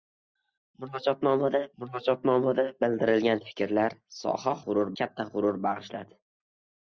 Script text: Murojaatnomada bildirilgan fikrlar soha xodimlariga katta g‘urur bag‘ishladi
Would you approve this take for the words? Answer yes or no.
no